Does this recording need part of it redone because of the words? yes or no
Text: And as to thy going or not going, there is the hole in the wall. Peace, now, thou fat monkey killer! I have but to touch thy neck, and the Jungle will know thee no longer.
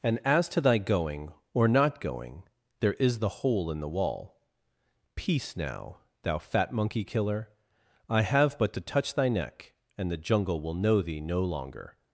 no